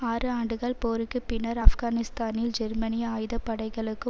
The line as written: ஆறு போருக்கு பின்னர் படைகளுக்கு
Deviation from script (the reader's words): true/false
true